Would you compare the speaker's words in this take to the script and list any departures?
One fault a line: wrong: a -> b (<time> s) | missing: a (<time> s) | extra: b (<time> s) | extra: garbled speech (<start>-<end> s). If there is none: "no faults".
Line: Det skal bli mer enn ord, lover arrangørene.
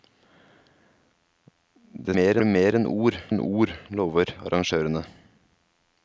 wrong: skal -> mer (2.1 s)
extra: enn ord (3.3 s)